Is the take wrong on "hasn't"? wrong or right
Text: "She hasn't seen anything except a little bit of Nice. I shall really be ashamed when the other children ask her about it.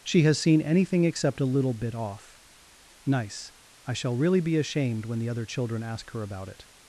wrong